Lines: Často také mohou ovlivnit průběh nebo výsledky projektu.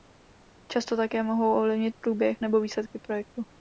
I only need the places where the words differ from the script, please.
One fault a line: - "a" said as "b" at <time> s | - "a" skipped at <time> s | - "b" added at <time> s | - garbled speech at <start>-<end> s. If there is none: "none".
none